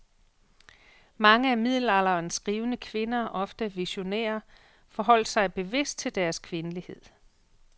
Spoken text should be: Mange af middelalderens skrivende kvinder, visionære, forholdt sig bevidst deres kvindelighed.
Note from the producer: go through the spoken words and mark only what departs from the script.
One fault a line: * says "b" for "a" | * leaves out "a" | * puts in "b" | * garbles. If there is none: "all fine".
* puts in "ofte"
* puts in "til"